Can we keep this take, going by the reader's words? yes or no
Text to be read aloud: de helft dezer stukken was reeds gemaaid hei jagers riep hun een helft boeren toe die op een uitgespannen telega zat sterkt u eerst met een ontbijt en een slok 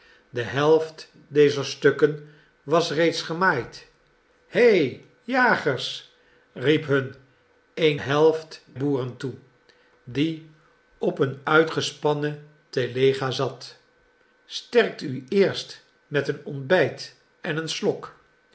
yes